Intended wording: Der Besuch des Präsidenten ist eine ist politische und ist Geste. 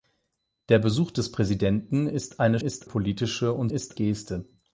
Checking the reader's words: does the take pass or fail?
pass